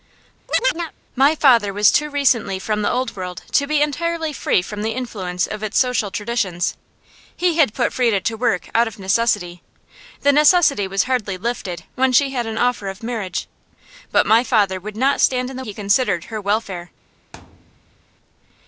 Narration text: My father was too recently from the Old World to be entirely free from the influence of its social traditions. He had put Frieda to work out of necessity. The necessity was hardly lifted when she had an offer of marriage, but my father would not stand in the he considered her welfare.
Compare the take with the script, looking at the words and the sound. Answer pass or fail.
fail